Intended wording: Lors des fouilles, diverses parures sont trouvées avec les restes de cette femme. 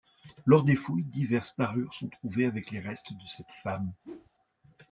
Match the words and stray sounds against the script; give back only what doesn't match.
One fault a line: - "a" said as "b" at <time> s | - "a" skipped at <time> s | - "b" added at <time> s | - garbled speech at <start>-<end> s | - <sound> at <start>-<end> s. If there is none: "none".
- whoosh at 4.0-4.3 s